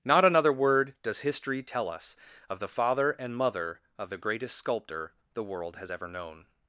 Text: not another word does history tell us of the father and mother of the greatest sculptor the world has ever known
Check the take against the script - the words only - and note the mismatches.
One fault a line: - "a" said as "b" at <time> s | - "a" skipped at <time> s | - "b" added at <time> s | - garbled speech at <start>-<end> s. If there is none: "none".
none